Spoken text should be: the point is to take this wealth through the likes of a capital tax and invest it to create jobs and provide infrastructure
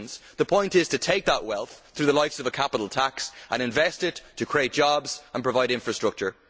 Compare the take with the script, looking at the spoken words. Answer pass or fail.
fail